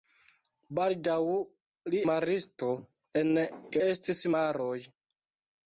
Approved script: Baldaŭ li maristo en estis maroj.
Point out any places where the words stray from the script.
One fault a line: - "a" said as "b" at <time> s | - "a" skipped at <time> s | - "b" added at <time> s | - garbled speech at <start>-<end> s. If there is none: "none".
none